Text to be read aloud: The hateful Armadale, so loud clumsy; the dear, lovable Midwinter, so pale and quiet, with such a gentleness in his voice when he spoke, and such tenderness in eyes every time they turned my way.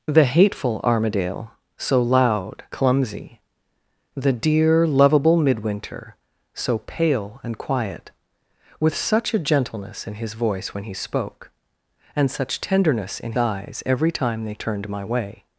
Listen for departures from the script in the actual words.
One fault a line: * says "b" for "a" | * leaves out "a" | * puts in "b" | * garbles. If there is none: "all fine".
all fine